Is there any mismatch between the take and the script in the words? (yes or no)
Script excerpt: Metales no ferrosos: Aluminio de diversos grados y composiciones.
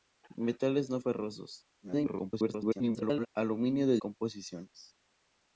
yes